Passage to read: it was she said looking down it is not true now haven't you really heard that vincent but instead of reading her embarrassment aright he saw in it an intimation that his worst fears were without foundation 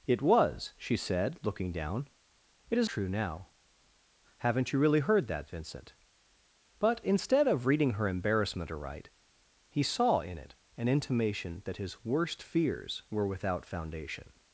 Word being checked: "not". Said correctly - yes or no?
no